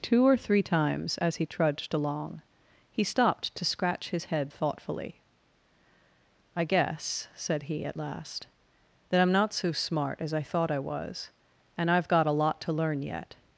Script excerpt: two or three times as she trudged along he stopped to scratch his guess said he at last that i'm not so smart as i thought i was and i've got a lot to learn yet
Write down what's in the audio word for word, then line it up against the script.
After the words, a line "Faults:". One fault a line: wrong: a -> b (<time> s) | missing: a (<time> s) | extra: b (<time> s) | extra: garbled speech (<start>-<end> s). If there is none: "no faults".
two or three times as he trudged along he stopped to scratch his head thoughtfully i guess said he at last that i'm not so smart as i thought i was and i've got a lot to learn yet
Faults:
wrong: she -> he (1.4 s)
extra: head thoughtfully i (4.3 s)